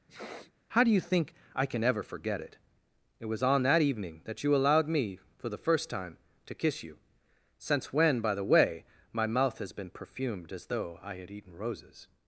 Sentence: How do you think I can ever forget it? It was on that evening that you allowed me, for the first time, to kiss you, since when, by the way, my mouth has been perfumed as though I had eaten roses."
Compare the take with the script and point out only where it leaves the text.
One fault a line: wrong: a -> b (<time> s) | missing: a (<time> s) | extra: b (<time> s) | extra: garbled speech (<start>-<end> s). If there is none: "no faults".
no faults